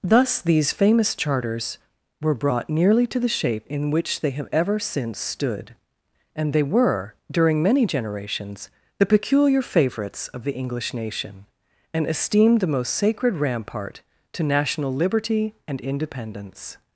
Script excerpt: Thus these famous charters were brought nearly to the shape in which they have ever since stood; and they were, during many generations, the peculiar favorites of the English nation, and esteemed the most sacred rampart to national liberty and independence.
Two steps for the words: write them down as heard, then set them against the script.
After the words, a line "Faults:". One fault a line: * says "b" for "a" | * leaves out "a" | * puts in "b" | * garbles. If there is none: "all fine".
Thus these famous charters were brought nearly to the shape in which they have ever since stood; and they were, during many generations, the peculiar favorites of the English nation, and esteemed the most sacred rampart to national liberty and independence.
Faults:
all fine